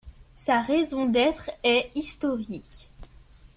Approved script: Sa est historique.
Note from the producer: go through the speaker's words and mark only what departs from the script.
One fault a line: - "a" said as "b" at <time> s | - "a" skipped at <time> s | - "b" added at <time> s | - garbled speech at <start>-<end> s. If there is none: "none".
- "raison d'être" added at 0.6 s